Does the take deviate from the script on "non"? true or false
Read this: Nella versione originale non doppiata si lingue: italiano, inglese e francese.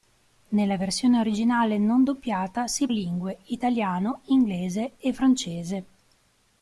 false